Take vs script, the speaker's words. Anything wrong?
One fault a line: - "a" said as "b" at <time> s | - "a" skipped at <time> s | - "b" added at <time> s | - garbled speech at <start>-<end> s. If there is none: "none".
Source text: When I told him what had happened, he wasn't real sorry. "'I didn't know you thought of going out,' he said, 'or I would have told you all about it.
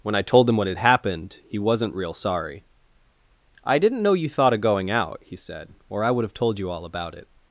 none